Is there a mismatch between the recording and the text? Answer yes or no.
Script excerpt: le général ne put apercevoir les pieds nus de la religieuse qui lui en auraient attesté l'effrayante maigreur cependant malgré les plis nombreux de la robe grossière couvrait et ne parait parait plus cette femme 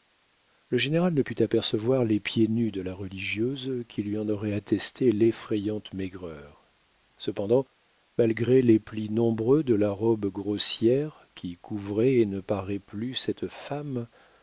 yes